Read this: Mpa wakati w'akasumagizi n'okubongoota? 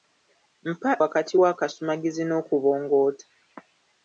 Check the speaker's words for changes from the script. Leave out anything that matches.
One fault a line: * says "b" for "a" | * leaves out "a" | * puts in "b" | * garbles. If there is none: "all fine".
all fine